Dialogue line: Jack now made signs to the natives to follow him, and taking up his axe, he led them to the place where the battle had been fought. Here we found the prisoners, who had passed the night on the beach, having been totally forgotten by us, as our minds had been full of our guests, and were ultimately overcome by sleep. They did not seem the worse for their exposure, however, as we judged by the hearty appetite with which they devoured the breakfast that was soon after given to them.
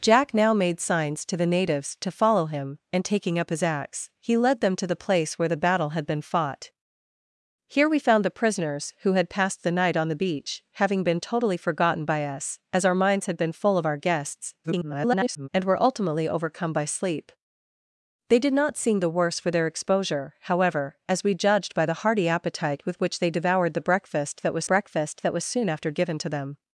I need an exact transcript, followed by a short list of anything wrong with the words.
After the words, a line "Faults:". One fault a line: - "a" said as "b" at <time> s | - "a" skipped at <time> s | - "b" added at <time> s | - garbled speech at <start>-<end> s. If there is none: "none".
Jack now made signs to the natives to follow him, and taking up his axe, he led them to the place where the battle had been fought. Here we found the prisoners, who had passed the night on the beach, having been totally forgotten by us, as our minds had been full of our guests, [garbled] and were ultimately overcome by sleep. They did not seem the worse for their exposure, however, as we judged by the hearty appetite with which they devoured the breakfast that was breakfast that was soon after given to them.
Faults:
- garbled speech at 14.6-15.5 s
- "breakfast that was" added at 24.6 s